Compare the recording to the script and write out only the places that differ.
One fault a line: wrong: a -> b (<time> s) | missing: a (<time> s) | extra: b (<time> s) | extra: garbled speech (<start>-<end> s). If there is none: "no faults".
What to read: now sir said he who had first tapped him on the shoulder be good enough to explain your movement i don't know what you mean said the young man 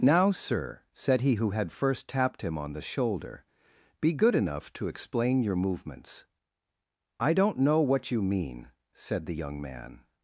wrong: movement -> movements (5.5 s)